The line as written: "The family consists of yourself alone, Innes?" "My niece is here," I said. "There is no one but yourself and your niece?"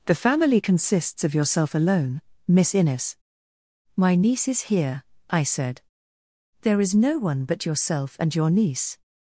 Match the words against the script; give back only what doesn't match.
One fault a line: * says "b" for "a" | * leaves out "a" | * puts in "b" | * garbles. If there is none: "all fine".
* puts in "Miss"